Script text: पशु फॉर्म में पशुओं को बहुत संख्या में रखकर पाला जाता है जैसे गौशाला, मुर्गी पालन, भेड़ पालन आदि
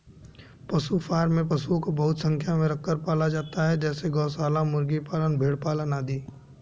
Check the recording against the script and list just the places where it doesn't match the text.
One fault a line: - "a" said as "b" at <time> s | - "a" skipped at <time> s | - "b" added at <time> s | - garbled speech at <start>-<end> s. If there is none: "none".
none